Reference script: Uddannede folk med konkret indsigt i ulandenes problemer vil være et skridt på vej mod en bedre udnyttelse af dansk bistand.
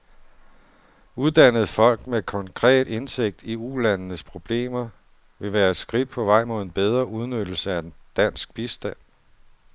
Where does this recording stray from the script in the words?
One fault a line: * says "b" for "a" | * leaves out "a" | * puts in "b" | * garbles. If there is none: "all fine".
all fine